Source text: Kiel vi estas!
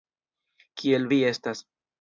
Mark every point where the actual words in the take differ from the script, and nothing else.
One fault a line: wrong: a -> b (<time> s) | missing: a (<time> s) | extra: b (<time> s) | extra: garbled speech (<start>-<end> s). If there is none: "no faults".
no faults